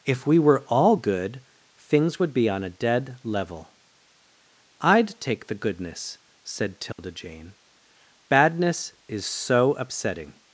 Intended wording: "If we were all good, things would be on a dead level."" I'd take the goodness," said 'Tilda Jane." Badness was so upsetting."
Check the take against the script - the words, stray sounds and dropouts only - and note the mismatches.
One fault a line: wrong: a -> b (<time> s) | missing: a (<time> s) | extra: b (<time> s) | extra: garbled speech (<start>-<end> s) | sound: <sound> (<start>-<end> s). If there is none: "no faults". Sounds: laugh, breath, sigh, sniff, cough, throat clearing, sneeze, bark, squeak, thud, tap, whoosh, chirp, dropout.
sound: dropout (6.9-7.0 s)
wrong: was -> is (9.1 s)